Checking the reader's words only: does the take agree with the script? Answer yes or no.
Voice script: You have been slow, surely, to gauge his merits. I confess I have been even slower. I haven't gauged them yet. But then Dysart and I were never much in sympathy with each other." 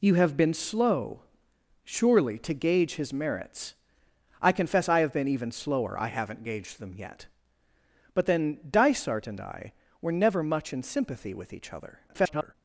no